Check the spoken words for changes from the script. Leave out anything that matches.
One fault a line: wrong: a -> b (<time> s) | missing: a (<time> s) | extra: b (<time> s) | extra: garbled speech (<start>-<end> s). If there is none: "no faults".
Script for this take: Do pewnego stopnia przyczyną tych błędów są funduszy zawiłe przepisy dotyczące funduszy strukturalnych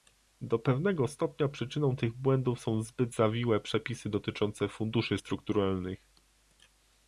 wrong: funduszy -> zbyt (2.8 s)